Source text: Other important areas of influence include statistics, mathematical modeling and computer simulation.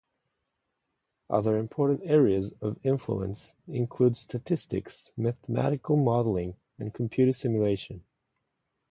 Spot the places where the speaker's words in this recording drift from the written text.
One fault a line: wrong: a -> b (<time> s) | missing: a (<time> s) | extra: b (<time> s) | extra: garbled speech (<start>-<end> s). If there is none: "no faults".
no faults